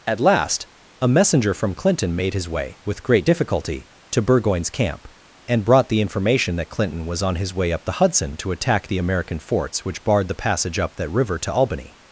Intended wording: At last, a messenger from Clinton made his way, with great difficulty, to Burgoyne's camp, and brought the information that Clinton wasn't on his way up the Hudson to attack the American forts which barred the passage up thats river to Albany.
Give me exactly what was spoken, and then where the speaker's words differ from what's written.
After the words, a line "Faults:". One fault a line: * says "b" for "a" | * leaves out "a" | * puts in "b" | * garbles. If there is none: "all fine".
At last, a messenger from Clinton made his way, with great difficulty, to Burgoyne's camp, and brought the information that Clinton was on his way up the Hudson to attack the American forts which barred the passage up that river to Albany.
Faults:
* says "was" for "wasn't"
* says "that" for "thats"